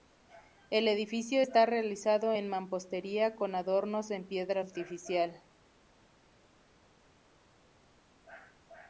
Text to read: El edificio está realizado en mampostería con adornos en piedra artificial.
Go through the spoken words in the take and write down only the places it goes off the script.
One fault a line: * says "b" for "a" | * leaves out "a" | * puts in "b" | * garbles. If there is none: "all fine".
all fine